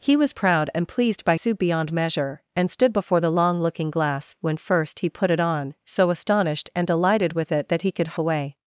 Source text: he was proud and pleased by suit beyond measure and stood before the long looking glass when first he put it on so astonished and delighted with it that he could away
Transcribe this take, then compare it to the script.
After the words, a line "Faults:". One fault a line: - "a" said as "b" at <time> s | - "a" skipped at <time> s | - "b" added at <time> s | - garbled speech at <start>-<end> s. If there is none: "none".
he was proud and pleased by suit beyond measure and stood before the long looking glass when first he put it on so astonished and delighted with it that he could away
Faults:
none